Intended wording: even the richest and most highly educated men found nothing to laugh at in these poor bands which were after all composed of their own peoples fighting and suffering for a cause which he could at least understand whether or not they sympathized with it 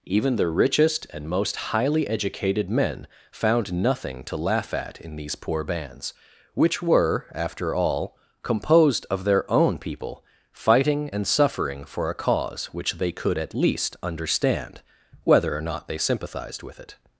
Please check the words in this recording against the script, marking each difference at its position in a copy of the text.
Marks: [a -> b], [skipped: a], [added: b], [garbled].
even the richest and most highly educated men found nothing to laugh at in these poor bands which were after all composed of their own [peoples -> people] fighting and suffering for a cause which [he -> they] could at least understand whether or not they sympathized with it